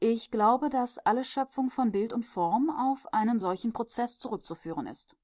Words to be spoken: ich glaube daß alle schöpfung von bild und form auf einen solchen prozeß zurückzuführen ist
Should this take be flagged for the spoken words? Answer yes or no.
no